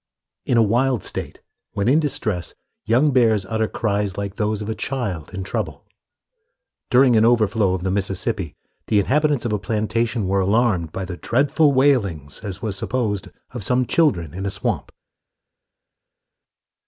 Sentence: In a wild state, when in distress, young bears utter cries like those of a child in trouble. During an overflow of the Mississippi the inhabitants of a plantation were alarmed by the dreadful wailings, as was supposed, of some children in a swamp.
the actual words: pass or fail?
pass